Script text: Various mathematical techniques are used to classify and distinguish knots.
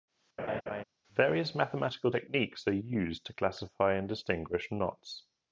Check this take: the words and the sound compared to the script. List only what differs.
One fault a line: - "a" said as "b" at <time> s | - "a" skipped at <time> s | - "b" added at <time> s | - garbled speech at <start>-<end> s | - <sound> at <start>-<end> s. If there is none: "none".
- laugh at 0.4-0.8 s